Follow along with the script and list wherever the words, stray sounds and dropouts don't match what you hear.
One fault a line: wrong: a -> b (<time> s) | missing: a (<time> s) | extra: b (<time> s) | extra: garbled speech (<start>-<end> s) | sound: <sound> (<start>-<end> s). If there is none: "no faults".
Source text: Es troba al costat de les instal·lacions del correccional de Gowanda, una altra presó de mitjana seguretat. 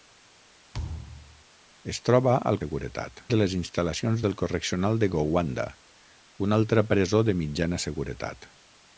sound: thud (0.7-1.4 s)
wrong: costat -> seguretat (2.6 s)